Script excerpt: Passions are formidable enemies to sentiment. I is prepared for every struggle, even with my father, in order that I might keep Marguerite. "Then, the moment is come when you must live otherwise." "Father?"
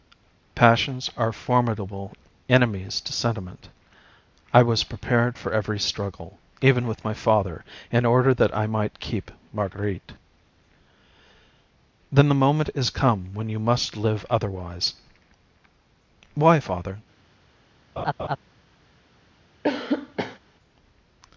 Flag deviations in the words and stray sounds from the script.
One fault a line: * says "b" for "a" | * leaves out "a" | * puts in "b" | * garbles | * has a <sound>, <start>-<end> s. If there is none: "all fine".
* says "was" for "is"
* puts in "Why"
* has a laugh, 18.0-18.4 s
* has a cough, 19.6-20.4 s